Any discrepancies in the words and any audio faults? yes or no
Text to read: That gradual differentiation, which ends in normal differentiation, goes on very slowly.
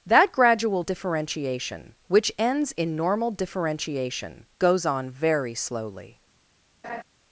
yes